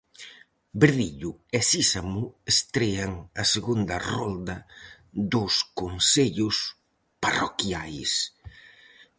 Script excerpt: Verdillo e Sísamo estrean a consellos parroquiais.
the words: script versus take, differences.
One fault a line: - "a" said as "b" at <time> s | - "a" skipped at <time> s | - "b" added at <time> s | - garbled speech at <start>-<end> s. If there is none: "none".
- "segunda rolda dos" added at 3.5 s